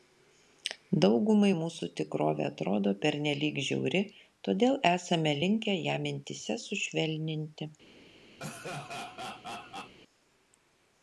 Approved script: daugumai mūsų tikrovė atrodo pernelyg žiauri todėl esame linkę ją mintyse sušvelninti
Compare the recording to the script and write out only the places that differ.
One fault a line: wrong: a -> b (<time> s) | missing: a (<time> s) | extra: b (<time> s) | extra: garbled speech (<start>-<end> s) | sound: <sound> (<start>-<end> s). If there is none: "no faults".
sound: laugh (8.4-9.9 s)